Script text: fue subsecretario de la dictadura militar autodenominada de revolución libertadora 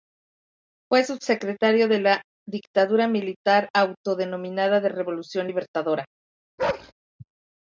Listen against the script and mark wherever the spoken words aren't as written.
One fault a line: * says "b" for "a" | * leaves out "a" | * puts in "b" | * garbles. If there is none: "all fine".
all fine